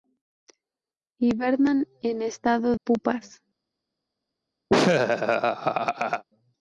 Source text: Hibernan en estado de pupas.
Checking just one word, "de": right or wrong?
wrong